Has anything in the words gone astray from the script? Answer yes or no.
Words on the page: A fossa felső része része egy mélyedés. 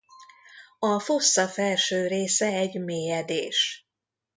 yes